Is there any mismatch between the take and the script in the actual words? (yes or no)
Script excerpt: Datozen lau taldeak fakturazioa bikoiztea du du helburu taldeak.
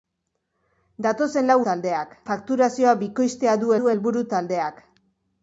no